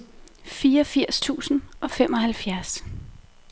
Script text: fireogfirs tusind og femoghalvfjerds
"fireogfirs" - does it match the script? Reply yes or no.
yes